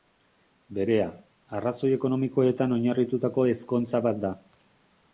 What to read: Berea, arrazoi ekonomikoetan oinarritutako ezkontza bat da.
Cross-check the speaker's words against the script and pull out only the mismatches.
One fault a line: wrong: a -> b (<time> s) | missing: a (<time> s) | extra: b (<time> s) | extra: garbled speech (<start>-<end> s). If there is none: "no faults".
no faults